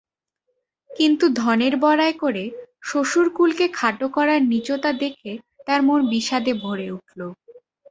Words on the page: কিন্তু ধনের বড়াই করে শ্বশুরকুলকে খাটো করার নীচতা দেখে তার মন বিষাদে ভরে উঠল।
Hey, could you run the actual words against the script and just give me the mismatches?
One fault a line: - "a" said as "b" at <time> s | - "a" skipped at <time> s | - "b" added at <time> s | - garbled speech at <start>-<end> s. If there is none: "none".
none